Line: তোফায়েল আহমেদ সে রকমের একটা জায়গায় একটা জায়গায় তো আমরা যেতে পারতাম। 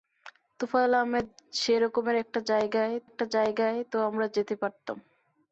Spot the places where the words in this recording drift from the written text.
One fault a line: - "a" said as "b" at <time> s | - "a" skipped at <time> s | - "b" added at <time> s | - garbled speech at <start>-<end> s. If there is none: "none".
none